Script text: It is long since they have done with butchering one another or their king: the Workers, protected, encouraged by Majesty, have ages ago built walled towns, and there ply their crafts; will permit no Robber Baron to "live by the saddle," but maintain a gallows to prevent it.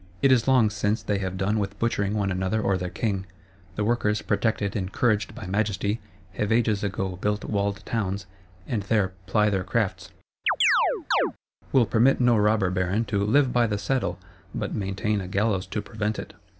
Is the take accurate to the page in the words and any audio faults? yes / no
no